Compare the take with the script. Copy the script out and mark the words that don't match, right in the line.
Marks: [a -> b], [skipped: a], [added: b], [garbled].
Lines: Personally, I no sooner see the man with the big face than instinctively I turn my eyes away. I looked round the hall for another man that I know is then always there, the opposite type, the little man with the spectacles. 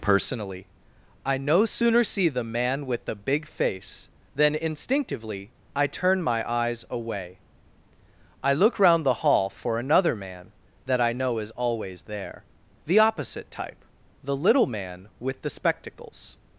Personally, I no sooner see the man with the big face than instinctively I turn my eyes away. I [looked -> look] round the hall for another man that I know is [skipped: then] always there, the opposite type, the little man with the spectacles.